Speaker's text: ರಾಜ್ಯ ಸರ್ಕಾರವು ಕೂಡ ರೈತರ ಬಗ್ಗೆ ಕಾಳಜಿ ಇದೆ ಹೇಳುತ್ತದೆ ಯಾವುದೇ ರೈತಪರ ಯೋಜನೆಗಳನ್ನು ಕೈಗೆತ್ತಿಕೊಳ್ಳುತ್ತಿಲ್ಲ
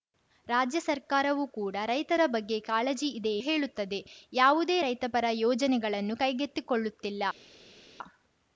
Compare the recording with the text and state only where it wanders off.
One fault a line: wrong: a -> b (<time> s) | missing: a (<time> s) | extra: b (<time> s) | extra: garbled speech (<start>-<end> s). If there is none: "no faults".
no faults